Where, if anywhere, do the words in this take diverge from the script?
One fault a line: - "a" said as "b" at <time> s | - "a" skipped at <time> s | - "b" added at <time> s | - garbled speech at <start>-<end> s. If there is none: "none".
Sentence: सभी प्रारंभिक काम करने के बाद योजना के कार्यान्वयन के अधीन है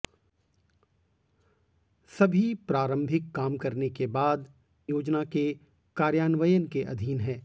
none